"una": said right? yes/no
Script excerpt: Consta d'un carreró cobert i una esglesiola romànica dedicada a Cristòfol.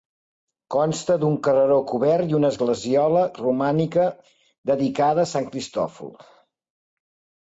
yes